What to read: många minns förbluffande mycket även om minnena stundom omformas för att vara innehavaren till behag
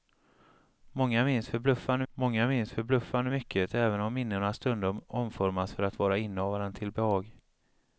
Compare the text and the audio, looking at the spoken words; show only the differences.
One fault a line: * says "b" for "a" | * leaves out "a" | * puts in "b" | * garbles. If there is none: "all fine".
* puts in "många minns förbluffande"